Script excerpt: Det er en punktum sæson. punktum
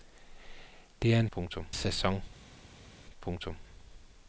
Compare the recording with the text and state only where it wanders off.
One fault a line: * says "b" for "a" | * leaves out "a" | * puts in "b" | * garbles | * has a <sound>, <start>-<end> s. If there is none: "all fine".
all fine